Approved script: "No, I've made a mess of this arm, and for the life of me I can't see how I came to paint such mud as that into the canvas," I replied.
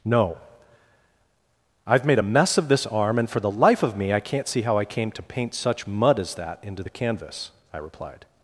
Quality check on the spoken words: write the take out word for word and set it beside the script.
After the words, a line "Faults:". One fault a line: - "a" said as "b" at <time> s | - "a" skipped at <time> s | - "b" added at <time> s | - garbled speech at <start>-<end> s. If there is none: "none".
"No, I've made a mess of this arm, and for the life of me I can't see how I came to paint such mud as that into the canvas," I replied.
Faults:
none